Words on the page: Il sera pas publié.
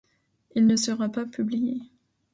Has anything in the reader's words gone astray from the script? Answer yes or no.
yes